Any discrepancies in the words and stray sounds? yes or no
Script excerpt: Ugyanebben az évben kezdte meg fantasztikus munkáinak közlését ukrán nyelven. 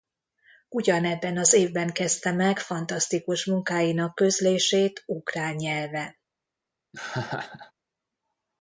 yes